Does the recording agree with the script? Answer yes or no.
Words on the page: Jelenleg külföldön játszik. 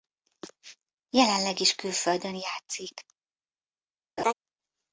no